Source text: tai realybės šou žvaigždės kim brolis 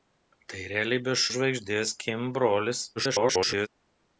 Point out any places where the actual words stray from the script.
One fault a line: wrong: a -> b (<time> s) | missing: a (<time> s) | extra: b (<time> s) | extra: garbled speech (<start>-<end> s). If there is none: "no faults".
missing: šou (1.3 s)
extra: garbled speech (3.0-3.7 s)